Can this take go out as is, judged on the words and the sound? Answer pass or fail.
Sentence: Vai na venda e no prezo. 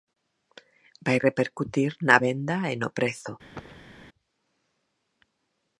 fail